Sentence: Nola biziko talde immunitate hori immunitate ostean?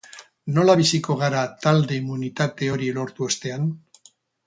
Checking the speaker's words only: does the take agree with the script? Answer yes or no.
no